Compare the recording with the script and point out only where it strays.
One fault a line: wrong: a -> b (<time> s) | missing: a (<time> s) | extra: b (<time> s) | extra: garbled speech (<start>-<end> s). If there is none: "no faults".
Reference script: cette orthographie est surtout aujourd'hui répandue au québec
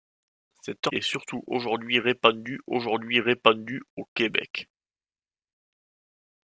missing: orthographie (0.9 s)
extra: aujourd'hui répandue (2.7 s)